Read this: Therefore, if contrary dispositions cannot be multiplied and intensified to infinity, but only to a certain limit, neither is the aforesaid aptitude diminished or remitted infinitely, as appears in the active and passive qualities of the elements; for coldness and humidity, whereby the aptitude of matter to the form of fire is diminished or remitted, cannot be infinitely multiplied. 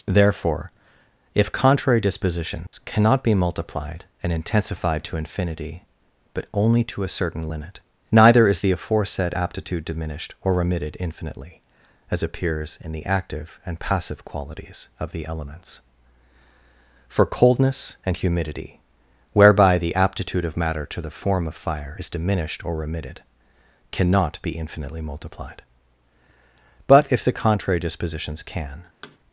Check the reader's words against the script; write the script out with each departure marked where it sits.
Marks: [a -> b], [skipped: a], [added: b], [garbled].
Therefore, if contrary dispositions cannot be multiplied and intensified to infinity, but only to a certain limit, neither is the aforesaid aptitude diminished or remitted infinitely, as appears in the active and passive qualities of the elements; for coldness and humidity, whereby the aptitude of matter to the form of fire is diminished or remitted, cannot be infinitely multiplied. [added: But if the contrary dispositions can]